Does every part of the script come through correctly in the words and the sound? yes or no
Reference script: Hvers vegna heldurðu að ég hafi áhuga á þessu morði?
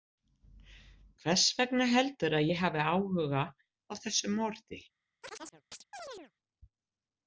no